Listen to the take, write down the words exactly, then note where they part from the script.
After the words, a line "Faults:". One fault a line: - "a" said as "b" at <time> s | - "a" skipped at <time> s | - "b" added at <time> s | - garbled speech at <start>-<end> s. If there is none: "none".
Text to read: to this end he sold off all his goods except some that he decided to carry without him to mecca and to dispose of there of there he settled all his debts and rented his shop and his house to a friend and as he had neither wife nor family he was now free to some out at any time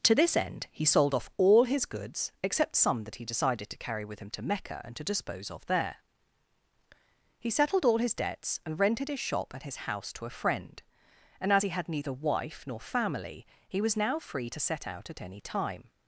to this end he sold off all his goods except some that he decided to carry with him to mecca and to dispose of there he settled all his debts and rented his shop and his house to a friend and as he had neither wife nor family he was now free to set out at any time
Faults:
- "without" said as "with" at 4.0 s
- "of there" skipped at 6.0 s
- "some" said as "set" at 14.6 s